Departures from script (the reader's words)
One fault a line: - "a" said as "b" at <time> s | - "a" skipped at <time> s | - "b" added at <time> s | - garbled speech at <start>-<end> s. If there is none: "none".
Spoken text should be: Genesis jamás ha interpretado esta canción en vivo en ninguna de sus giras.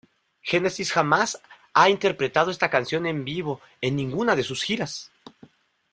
none